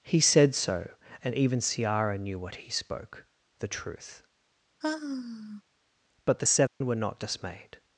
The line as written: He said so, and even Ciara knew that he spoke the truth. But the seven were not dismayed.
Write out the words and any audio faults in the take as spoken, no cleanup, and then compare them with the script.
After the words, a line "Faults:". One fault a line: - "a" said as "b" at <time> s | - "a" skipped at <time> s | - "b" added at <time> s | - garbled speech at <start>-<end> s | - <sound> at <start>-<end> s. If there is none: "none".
He said so, and even Ciara knew what he spoke the truth. But the seven were not dismayed.
Faults:
- "that" said as "what" at 2.4 s
- sigh at 4.8-5.6 s
- dropout at 6.7-6.8 s